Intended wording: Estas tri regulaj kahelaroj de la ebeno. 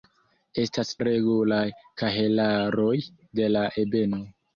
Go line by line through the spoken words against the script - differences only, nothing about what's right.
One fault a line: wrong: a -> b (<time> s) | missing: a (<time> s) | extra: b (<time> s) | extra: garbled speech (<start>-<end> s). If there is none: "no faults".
missing: tri (0.9 s)